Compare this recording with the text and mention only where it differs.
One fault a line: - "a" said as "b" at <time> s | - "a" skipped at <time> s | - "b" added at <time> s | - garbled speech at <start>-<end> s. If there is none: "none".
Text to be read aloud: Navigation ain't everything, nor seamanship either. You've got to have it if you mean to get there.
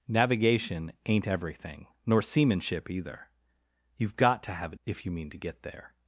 none